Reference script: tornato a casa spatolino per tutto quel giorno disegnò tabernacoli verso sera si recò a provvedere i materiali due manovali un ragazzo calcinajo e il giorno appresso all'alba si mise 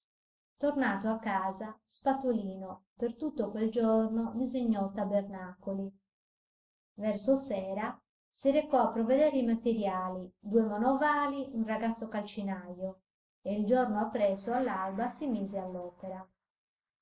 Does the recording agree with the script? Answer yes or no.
yes